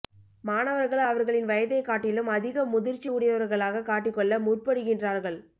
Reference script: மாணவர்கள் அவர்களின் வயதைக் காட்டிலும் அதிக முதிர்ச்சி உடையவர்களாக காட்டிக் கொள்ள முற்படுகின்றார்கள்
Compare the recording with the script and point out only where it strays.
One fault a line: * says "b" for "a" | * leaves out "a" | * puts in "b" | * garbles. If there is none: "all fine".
all fine